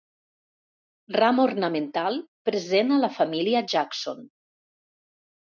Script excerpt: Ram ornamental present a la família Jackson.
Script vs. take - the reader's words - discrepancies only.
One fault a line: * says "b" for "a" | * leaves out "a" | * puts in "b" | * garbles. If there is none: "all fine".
all fine